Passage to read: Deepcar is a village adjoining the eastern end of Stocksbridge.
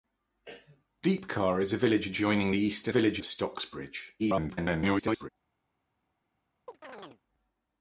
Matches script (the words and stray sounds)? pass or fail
fail